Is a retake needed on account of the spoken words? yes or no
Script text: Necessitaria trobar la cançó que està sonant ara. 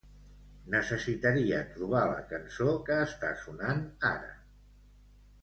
no